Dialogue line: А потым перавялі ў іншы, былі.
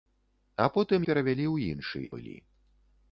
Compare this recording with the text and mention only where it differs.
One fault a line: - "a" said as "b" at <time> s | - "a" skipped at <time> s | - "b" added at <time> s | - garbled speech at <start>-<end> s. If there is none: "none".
none